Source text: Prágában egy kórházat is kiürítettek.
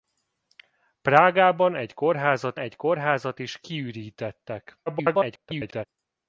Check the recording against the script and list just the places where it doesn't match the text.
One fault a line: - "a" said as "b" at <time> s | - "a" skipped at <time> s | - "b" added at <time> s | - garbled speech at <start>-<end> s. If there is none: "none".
- "egy kórházat" added at 2.6 s
- garbled speech at 4.9-5.9 s